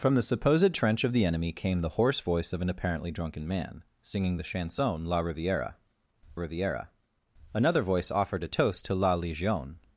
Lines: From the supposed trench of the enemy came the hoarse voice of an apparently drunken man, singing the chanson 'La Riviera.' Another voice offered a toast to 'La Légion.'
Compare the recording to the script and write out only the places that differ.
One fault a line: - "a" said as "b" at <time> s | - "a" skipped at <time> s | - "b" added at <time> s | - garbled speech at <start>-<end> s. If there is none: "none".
- "Riviera" added at 6.3 s